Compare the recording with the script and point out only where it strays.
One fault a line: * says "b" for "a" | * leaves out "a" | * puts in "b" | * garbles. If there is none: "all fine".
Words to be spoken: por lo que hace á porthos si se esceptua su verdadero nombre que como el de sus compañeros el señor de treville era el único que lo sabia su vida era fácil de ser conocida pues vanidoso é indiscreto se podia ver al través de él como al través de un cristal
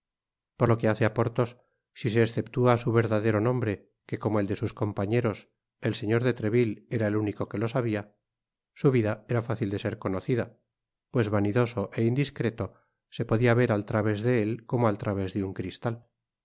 all fine